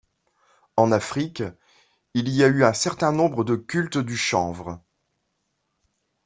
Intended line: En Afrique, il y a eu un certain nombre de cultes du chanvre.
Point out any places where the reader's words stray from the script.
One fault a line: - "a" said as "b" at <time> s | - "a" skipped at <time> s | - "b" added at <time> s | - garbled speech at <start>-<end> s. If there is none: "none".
none